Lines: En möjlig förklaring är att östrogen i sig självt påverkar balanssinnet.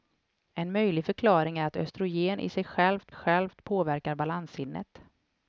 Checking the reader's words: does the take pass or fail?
fail